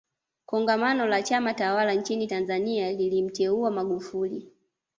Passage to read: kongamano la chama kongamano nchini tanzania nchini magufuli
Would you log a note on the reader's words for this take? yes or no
yes